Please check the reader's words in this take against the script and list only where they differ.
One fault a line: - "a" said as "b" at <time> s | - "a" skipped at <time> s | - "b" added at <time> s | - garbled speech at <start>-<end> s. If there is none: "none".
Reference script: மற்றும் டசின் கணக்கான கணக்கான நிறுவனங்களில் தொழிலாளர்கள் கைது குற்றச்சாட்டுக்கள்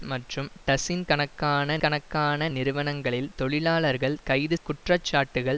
none